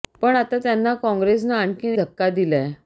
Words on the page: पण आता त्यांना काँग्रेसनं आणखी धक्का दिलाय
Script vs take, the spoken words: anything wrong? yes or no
no